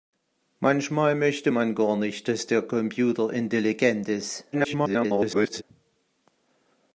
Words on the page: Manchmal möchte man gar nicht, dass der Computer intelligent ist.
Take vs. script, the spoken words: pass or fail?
fail